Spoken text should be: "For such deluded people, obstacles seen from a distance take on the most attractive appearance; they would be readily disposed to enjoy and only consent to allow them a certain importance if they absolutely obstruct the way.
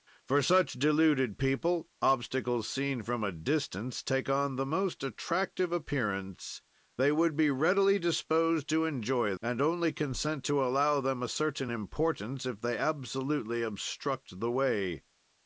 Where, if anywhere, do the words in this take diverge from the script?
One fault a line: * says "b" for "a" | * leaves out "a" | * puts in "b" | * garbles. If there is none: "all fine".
all fine